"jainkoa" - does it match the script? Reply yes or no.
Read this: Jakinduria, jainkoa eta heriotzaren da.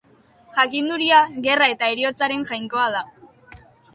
no